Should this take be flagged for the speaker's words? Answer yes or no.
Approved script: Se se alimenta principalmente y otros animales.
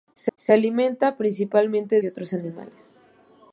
no